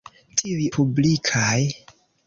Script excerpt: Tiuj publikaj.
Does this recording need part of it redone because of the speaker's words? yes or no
no